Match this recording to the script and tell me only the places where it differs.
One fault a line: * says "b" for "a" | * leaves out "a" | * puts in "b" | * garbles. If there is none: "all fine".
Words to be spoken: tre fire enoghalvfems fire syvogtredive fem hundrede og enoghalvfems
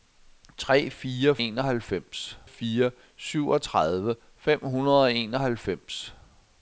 all fine